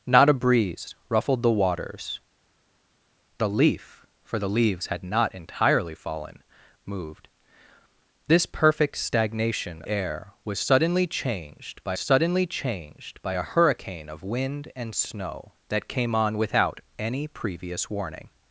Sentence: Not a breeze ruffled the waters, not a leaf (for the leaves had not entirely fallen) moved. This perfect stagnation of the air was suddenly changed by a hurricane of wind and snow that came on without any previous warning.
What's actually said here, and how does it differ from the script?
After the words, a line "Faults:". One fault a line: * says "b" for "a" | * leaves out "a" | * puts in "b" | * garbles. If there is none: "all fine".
Not a breeze ruffled the waters, a leaf (for the leaves had not entirely fallen) moved. This perfect stagnation air was suddenly changed by suddenly changed by a hurricane of wind and snow that came on without any previous warning.
Faults:
* leaves out "not"
* says "air was suddenly changed by" for "of the air was"